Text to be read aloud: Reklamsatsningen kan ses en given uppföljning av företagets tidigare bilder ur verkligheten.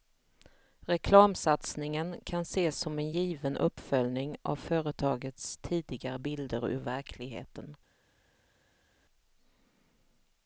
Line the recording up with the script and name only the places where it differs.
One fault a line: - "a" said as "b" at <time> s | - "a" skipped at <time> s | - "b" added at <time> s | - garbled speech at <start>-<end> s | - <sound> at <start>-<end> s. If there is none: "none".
- "som" added at 2.8 s